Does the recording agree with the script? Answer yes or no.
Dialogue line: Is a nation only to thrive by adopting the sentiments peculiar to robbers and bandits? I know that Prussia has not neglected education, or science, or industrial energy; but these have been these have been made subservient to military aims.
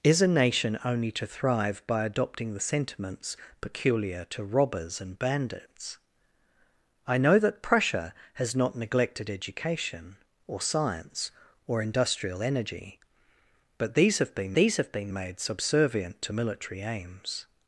yes